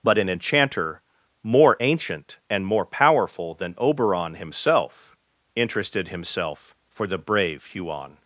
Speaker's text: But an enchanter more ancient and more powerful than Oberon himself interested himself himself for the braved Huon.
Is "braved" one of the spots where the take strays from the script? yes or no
yes